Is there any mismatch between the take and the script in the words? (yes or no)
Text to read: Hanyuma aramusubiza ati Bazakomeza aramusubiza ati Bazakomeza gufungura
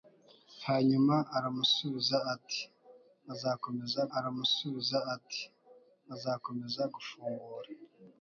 no